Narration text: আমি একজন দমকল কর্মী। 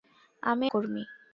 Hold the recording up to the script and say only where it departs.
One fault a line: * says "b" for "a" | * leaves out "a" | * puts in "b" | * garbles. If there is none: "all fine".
* leaves out "একজন দমকল"